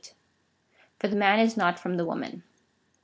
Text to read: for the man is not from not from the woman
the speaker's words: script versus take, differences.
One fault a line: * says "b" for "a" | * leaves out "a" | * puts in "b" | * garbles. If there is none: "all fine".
* leaves out "not from"